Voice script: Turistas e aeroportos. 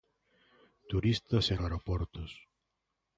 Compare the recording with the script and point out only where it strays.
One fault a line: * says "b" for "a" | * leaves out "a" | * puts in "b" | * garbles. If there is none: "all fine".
all fine